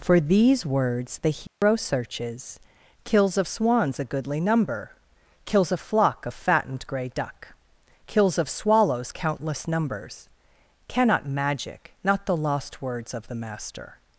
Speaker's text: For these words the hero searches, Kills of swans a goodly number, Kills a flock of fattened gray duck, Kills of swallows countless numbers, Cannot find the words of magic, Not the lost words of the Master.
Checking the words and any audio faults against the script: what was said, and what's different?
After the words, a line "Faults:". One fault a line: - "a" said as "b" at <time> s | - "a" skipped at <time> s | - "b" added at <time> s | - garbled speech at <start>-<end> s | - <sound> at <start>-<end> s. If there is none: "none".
For these words the hero searches, Kills of swans a goodly number, Kills a flock of fattened gray duck, Kills of swallows countless numbers, Cannot magic, Not the lost words of the Master.
Faults:
- dropout at 1.5-1.6 s
- "find the words of" skipped at 11.3 s